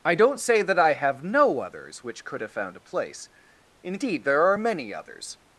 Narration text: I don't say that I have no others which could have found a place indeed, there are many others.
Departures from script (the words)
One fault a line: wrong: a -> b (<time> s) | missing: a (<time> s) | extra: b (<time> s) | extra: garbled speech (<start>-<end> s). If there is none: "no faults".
no faults